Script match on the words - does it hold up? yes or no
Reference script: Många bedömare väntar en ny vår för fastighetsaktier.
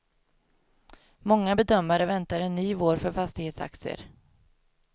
yes